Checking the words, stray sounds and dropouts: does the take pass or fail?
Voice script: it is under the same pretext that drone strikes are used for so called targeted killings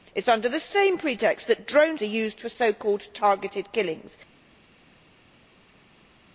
fail